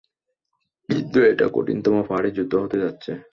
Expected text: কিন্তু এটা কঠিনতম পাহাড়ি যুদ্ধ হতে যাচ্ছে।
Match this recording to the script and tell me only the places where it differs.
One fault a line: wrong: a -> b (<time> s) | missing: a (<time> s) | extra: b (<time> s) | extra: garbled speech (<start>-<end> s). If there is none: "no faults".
no faults